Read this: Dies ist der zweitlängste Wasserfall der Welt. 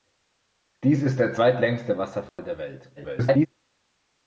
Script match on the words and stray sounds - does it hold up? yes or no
no